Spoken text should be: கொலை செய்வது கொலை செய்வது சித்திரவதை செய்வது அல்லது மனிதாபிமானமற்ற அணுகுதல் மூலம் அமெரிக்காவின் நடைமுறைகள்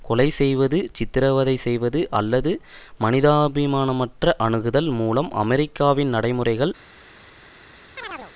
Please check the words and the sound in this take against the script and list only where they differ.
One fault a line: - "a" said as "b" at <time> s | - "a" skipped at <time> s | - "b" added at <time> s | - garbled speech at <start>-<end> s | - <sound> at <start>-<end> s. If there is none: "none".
- "கொலை செய்வது" skipped at 0.8 s
- chirp at 8.0-8.3 s